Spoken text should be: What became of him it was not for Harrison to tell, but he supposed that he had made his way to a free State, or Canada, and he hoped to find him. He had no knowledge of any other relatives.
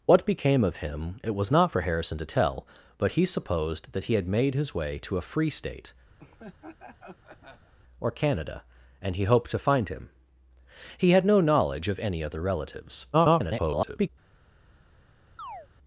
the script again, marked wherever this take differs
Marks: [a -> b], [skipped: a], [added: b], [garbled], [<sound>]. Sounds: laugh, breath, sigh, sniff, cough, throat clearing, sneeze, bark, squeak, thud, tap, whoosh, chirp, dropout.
What became of him it was not for Harrison to tell, but he supposed that he had made his way to a free State, [laugh] or Canada, and he hoped to find him. He had no knowledge of any other relatives. [garbled] [chirp]